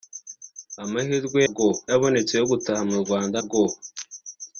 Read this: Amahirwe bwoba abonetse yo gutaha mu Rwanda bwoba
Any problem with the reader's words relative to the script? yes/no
no